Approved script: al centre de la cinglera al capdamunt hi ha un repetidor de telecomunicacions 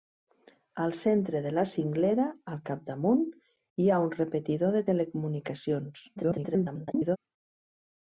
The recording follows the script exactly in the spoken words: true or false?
false